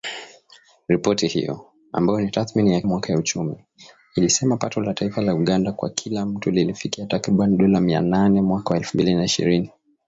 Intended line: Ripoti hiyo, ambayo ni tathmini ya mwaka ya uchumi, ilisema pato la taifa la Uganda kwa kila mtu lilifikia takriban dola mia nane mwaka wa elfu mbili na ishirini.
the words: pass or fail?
pass